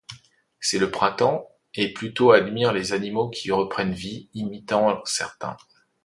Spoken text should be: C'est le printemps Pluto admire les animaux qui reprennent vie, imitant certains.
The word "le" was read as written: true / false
true